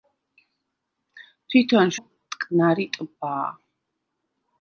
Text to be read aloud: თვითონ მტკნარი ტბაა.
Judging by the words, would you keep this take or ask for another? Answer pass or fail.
pass